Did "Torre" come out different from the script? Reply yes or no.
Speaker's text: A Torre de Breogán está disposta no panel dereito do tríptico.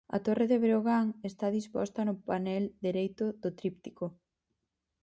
no